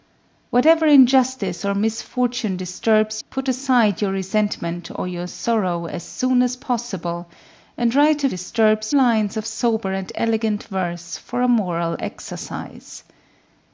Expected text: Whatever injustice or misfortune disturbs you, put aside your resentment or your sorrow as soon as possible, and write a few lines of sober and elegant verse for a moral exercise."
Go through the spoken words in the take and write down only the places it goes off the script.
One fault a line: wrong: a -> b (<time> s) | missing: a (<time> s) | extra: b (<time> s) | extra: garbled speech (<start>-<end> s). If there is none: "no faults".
missing: you (3.2 s)
wrong: few -> disturbs (8.3 s)